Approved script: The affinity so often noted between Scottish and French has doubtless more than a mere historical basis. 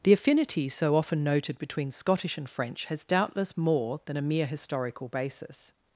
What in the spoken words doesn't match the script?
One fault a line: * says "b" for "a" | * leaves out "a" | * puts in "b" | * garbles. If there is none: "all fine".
all fine